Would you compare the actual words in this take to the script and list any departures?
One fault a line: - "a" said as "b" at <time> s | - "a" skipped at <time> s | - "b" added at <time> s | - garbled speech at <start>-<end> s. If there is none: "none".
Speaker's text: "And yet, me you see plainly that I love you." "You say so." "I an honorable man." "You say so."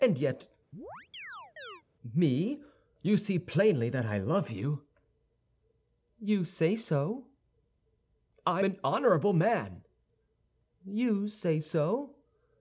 none